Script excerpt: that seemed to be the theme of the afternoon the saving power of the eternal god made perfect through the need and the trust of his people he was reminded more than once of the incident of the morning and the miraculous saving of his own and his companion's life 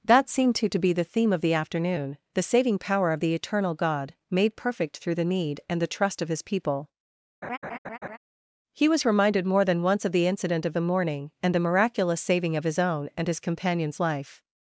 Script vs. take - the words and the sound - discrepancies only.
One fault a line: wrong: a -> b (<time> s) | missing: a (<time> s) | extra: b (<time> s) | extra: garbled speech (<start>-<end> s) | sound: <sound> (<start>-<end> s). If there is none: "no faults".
extra: to (0.7 s)
sound: laugh (7.4-8.2 s)